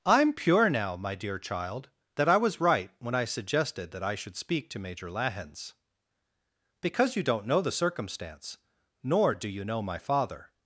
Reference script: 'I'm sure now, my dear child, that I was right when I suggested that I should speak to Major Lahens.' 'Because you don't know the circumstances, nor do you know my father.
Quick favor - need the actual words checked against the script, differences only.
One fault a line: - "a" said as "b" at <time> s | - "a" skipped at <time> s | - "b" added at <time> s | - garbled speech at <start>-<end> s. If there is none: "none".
- "sure" said as "pure" at 0.3 s
- "circumstances" said as "circumstance" at 7.7 s